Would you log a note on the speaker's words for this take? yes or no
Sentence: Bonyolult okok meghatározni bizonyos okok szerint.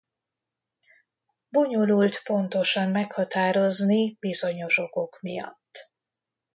yes